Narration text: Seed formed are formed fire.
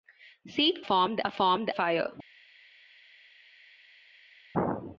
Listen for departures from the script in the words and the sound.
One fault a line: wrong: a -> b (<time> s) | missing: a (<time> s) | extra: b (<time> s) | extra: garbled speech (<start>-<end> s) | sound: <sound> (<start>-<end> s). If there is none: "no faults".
no faults